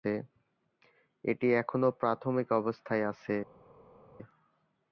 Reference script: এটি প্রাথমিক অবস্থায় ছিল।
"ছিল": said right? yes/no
no